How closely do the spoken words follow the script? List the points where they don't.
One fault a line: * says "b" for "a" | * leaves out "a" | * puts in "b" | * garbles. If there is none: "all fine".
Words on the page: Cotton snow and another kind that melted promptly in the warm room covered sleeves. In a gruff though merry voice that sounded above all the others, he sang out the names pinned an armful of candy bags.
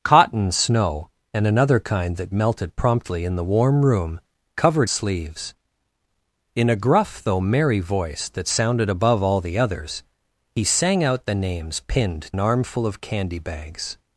all fine